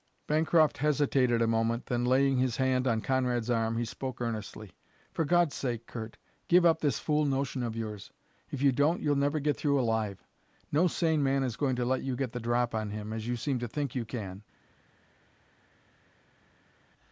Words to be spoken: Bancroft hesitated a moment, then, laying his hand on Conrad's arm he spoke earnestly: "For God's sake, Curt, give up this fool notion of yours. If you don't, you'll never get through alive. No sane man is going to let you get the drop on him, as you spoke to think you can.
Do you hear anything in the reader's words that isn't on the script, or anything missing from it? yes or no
yes